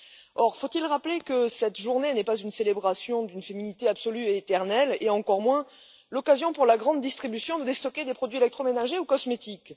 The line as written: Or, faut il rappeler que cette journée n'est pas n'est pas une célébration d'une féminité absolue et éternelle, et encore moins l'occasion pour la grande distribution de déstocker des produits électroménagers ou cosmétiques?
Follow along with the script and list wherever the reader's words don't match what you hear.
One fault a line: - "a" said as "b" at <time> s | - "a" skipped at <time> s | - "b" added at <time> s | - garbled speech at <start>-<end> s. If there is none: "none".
- "n'est pas" skipped at 2.4 s